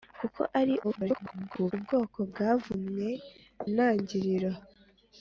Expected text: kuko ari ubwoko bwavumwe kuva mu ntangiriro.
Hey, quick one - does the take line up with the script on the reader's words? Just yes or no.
no